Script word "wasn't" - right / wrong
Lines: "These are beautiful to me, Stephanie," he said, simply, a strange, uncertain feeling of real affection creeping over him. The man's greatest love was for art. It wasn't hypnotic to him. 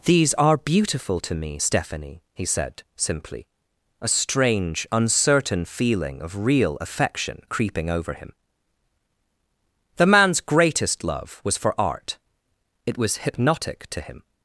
wrong